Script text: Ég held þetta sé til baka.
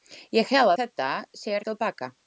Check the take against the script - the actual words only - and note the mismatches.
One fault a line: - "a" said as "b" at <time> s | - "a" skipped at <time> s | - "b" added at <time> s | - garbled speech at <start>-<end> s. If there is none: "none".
none